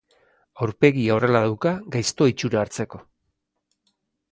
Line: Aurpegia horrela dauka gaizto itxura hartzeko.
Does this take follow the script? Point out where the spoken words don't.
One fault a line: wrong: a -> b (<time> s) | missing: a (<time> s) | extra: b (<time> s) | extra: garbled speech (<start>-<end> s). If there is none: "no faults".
no faults